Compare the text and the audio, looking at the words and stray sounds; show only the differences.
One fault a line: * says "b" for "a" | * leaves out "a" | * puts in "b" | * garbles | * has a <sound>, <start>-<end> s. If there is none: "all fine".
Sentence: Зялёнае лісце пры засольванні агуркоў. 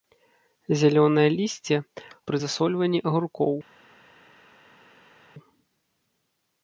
all fine